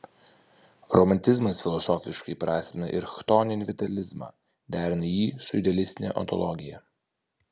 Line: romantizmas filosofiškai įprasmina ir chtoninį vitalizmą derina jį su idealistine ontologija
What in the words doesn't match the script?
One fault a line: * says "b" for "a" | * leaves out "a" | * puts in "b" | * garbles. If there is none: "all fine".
all fine